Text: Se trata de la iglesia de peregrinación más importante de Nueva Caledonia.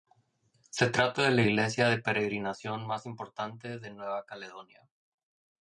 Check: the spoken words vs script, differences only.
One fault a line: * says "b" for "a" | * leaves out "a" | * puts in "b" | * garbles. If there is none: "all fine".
all fine